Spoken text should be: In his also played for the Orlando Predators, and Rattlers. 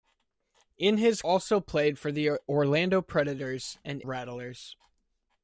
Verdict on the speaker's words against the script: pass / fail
pass